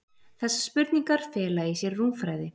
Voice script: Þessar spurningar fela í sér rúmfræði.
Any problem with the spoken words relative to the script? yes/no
no